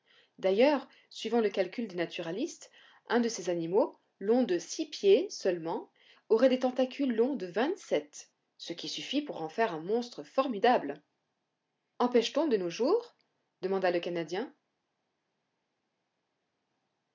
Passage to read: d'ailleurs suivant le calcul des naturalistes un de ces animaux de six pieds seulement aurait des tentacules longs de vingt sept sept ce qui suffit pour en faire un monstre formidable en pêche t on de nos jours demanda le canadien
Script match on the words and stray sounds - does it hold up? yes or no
no